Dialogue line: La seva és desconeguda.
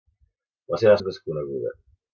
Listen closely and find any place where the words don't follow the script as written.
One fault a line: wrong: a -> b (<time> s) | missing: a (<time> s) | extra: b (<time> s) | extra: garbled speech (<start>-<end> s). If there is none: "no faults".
no faults